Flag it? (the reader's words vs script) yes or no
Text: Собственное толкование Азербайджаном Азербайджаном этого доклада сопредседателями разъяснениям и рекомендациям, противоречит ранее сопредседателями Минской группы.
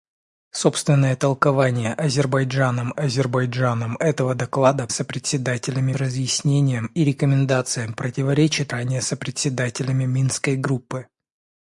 no